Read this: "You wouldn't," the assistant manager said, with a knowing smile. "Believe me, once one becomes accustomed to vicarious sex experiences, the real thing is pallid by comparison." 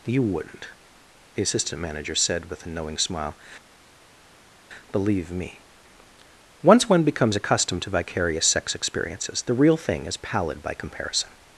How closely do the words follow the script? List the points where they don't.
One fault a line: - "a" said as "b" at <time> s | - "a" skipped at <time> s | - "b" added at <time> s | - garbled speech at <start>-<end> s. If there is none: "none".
none